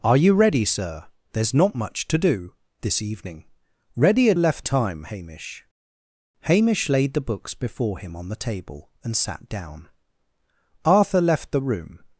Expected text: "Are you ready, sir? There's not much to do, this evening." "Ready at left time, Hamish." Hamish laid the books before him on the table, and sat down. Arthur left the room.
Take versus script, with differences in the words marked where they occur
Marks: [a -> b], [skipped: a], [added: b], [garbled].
"Are you ready, sir? There's not much to do, this evening." "Ready at left time, Hamish." Hamish laid the books before him on the table, and sat down. Arthur left the room.